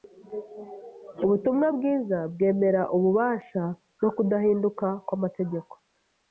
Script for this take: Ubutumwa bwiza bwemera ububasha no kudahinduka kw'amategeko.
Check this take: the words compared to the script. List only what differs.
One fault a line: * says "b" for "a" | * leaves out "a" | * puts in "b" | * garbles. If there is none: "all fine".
all fine